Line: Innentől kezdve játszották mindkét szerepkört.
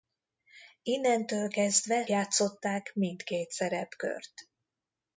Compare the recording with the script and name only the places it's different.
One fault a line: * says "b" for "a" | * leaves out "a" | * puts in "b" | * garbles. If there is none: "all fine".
all fine